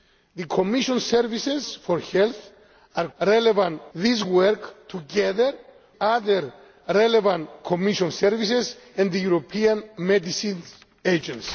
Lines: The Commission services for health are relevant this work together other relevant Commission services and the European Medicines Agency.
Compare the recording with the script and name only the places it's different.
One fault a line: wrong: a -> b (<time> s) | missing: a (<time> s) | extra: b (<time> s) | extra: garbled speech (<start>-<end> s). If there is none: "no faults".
no faults